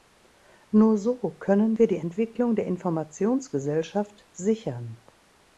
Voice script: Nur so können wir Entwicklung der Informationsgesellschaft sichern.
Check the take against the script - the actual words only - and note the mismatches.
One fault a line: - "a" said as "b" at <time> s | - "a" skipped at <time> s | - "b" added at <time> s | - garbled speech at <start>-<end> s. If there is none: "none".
- "die" added at 1.9 s